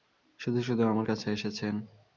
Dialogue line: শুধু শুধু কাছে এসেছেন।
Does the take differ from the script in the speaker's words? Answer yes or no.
yes